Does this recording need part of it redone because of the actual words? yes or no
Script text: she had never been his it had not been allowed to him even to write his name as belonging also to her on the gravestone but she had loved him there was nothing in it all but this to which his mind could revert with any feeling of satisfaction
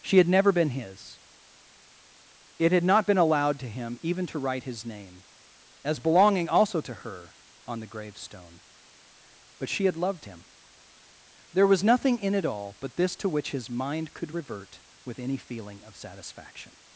no